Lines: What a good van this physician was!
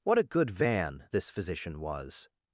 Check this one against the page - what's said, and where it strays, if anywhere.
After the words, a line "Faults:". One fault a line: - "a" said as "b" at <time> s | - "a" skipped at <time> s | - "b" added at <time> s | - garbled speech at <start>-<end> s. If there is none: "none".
What a good van this physician was!
Faults:
none